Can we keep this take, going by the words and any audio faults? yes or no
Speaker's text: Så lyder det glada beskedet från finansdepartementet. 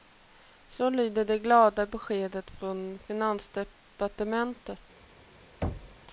no